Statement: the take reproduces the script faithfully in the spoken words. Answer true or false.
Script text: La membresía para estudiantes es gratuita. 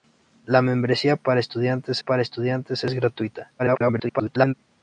false